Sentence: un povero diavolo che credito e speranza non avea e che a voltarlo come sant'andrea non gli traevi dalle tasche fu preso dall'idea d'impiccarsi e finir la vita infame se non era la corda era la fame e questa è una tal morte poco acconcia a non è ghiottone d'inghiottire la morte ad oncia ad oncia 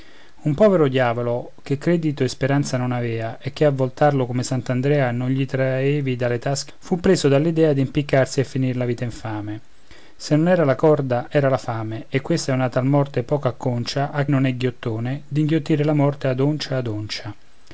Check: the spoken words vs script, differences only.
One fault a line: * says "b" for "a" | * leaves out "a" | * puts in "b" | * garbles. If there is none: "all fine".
all fine